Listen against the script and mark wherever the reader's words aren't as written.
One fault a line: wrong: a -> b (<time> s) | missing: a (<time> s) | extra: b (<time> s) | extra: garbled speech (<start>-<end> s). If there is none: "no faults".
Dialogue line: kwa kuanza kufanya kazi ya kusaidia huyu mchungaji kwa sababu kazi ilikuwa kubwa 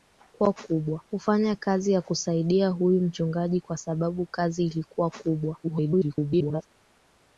wrong: kuanza -> kubwa (0.5 s)
extra: garbled speech (5.6-6.7 s)